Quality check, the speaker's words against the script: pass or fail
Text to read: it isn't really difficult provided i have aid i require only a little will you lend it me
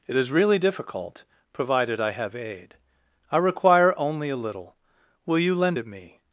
fail